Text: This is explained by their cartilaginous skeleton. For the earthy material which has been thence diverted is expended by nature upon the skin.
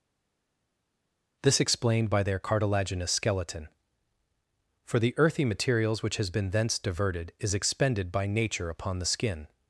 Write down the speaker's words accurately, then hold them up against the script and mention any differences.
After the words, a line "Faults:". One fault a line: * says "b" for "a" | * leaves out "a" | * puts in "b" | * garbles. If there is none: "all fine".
This explained by their cartilaginous skeleton. For the earthy materials which has been thence diverted is expended by nature upon the skin.
Faults:
* leaves out "is"
* says "materials" for "material"